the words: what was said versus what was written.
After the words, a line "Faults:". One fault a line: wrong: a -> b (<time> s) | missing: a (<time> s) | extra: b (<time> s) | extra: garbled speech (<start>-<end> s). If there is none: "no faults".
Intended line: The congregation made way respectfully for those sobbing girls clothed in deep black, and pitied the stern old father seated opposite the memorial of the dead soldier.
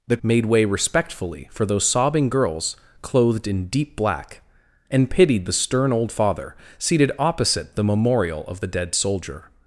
The made way respectfully for those sobbing girls clothed in deep black, and pitied the stern old father seated opposite the memorial of the dead soldier.
Faults:
missing: congregation (0.2 s)